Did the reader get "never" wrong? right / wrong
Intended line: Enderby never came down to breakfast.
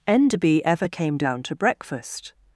wrong